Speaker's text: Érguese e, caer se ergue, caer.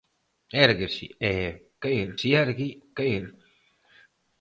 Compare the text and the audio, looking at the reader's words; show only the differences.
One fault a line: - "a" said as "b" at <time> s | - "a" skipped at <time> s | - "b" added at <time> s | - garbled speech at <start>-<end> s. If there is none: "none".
none